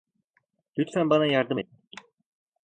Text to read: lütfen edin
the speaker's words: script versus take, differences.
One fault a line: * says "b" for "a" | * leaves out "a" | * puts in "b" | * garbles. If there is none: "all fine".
* puts in "bana yardım"